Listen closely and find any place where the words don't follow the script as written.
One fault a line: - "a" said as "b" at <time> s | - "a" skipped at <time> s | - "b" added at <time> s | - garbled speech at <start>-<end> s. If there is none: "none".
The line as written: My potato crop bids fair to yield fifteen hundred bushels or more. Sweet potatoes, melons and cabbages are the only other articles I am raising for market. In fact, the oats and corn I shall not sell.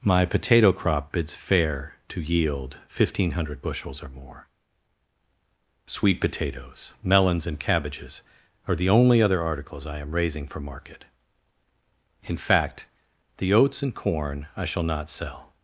none